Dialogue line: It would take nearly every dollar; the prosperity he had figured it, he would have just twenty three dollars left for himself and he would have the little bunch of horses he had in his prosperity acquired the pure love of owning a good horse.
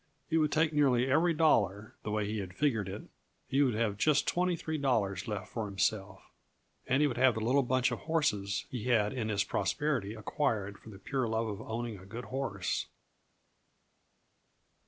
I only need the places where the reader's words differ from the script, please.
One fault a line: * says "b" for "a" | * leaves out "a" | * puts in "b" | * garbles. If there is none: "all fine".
* says "way" for "prosperity"
* puts in "for"